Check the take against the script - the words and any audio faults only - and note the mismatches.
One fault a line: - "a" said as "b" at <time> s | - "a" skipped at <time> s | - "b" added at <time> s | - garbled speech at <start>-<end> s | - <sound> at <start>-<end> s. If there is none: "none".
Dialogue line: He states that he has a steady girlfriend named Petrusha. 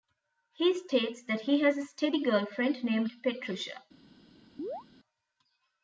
- chirp at 4.6-4.8 s